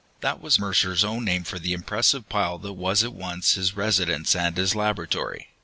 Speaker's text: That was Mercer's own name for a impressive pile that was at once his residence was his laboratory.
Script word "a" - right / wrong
wrong